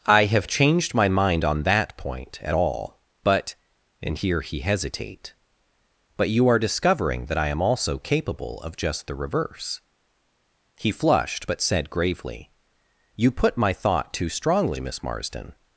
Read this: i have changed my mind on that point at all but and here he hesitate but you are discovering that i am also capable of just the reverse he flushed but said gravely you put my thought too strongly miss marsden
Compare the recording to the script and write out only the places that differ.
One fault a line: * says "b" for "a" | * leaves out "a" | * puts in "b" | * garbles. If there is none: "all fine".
all fine